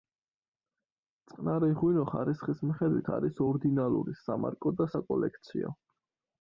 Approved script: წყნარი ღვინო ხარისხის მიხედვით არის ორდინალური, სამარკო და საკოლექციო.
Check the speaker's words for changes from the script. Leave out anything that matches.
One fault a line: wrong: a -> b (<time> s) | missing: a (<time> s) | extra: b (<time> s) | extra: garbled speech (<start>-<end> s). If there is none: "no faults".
no faults